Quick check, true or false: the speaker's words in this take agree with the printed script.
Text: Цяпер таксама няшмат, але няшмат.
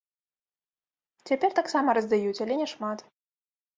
false